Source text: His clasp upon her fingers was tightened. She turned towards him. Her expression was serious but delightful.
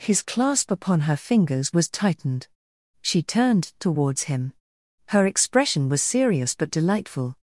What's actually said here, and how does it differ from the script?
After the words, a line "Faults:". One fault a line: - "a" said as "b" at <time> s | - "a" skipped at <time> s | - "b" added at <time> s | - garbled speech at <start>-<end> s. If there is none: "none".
His clasp upon her fingers was tightened. She turned towards him. Her expression was serious but delightful.
Faults:
none